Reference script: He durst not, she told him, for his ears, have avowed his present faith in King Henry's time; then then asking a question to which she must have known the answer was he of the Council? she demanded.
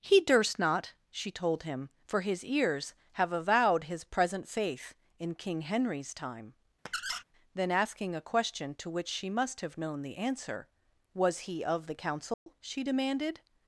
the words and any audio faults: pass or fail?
fail